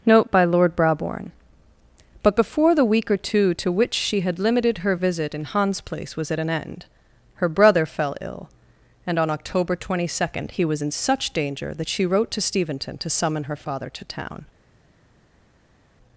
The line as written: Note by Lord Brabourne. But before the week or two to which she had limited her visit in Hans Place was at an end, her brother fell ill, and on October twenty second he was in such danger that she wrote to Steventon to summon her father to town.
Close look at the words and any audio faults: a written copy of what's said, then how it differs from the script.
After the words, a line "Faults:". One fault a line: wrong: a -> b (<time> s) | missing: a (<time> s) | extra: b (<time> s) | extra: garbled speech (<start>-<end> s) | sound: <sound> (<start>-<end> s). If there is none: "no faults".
Note by Lord Brabourne. But before the week or two to which she had limited her visit in Hans Place was at an end, her brother fell ill, and on October twenty second he was in such danger that she wrote to Steventon to summon her father to town.
Faults:
no faults